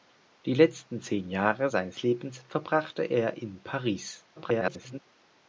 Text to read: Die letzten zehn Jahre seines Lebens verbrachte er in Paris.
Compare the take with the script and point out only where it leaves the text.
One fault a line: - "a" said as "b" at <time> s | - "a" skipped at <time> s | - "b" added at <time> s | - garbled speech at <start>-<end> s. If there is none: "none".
- garbled speech at 4.4-5.0 s